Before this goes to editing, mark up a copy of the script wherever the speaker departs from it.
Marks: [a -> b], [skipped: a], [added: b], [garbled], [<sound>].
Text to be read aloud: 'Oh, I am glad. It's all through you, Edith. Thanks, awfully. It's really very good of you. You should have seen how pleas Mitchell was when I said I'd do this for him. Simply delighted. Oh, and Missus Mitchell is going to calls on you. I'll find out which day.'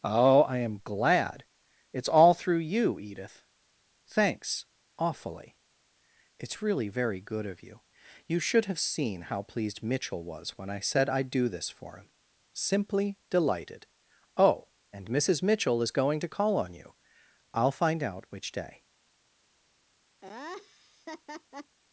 'Oh, I am glad. It's all through you, Edith. Thanks, awfully. It's really very good of you. You should have seen how [pleas -> pleased] Mitchell was when I said I'd do this for him. Simply delighted. Oh, and Missus Mitchell is going to [calls -> call] on you. I'll find out which day.' [laugh]